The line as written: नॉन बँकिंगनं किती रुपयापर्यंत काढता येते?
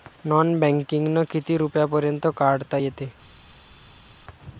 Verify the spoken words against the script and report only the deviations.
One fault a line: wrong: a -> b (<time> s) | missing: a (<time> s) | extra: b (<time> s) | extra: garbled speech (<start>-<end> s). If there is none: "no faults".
no faults